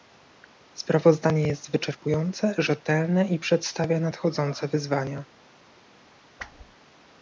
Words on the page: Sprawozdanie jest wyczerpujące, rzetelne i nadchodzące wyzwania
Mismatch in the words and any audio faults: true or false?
true